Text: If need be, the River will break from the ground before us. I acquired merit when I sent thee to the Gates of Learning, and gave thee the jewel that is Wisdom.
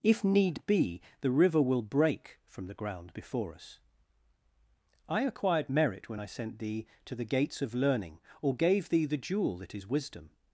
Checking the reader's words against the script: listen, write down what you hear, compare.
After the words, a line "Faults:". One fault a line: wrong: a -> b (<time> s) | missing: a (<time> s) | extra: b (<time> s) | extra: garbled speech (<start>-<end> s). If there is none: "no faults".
If need be, the River will break from the ground before us. I acquired merit when I sent thee to the Gates of Learning, or gave thee the jewel that is Wisdom.
Faults:
wrong: and -> or (8.4 s)